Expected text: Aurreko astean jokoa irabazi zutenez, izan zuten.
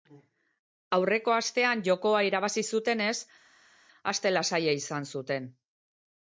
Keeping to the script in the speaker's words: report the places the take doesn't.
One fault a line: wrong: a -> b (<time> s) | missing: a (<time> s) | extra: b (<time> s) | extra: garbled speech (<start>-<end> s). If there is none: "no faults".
extra: aste lasaia (4.1 s)